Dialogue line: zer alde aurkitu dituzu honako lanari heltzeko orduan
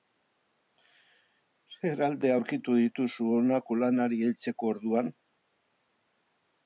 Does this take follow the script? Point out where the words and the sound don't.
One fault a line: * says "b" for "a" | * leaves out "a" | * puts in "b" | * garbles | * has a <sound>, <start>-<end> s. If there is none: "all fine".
all fine